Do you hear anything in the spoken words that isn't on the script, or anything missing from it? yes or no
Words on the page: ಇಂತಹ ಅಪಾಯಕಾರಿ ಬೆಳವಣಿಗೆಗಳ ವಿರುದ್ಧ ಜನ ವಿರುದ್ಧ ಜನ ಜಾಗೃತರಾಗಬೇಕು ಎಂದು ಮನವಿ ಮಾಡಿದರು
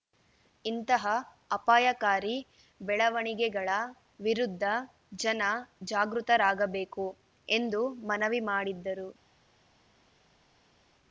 yes